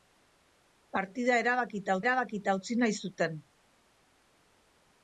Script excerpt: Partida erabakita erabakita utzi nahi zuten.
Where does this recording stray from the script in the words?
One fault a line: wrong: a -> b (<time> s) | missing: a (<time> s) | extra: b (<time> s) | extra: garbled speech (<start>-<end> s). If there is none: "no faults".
no faults